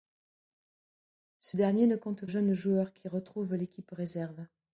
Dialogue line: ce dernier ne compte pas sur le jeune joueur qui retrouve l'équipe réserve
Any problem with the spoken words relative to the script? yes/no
yes